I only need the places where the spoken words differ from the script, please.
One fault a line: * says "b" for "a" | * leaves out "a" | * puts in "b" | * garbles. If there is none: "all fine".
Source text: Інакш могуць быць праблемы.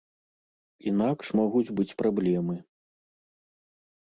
all fine